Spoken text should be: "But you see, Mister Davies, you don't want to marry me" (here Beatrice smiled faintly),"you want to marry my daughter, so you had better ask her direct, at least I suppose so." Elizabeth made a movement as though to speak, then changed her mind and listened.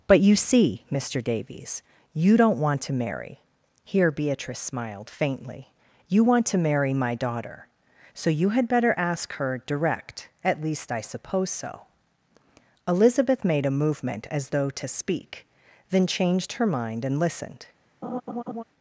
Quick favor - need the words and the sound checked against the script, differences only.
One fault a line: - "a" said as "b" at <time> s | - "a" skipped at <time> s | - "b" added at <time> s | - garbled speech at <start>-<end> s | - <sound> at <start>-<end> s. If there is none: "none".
- "me" skipped at 3.4 s
- laugh at 18.0-18.6 s